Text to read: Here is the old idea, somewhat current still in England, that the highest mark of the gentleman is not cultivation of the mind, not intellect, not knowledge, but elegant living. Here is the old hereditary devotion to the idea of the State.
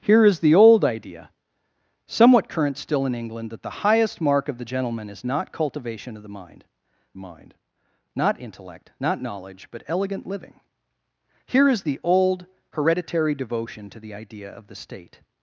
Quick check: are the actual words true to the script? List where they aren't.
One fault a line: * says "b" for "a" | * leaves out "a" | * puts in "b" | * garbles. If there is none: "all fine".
* puts in "mind"